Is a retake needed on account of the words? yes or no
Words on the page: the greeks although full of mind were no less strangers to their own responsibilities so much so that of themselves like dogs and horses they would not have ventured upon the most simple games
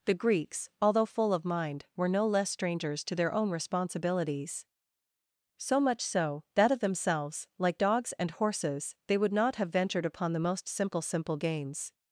yes